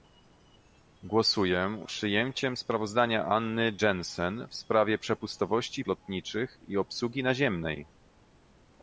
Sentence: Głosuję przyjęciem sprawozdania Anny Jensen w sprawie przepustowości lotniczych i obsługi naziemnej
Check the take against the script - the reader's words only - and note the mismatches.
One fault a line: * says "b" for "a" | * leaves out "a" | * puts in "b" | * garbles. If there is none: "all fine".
all fine